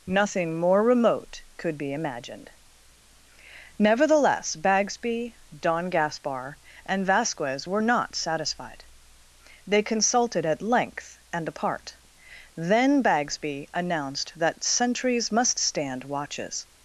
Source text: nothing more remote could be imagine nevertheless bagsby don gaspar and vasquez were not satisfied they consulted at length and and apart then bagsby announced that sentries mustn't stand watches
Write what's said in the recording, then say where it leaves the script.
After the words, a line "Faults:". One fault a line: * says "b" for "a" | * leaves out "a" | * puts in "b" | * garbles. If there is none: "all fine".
nothing more remote could be imagined nevertheless bagsby don gaspar and vasquez were not satisfied they consulted at length and apart then bagsby announced that sentries must stand watches
Faults:
* says "imagined" for "imagine"
* leaves out "and"
* says "must" for "mustn't"